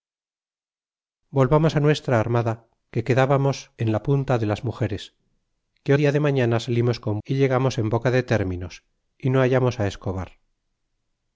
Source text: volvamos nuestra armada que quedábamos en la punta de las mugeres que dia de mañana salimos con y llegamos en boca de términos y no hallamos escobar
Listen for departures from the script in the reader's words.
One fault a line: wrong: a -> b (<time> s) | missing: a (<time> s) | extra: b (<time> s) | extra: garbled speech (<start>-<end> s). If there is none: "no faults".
no faults